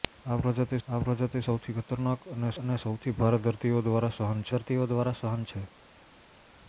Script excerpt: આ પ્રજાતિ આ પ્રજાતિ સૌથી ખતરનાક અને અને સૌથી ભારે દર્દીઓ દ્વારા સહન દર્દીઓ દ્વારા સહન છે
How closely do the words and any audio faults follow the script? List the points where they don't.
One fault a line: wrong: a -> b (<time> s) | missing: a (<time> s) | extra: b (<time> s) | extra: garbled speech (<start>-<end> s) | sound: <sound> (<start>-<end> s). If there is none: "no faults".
no faults